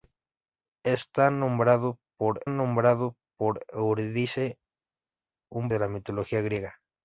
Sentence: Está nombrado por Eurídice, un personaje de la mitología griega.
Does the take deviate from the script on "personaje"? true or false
true